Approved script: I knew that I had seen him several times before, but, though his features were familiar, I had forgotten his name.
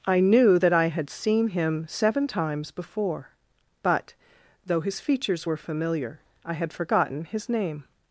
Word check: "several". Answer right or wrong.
wrong